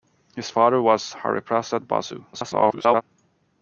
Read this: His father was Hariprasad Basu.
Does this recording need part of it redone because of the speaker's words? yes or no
yes